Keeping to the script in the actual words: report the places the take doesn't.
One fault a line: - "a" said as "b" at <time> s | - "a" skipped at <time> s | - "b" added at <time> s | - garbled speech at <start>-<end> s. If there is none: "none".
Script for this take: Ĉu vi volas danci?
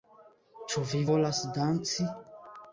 none